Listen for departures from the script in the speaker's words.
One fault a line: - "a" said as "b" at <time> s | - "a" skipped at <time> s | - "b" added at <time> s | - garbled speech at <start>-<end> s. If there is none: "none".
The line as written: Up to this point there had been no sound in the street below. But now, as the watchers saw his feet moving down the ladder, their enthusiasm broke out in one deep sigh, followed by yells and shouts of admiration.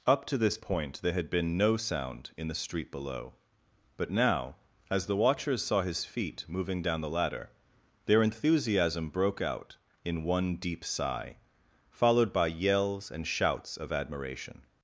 none